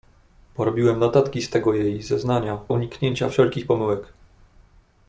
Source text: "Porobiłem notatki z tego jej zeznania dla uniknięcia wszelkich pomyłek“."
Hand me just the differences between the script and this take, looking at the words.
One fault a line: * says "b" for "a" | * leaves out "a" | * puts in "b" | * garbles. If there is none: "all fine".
* leaves out "dla"